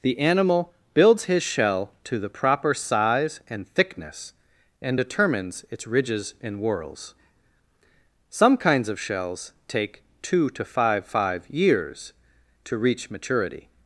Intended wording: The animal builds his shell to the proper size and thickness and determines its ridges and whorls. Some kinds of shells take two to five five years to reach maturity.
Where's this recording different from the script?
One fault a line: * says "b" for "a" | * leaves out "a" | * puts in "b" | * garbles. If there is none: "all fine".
all fine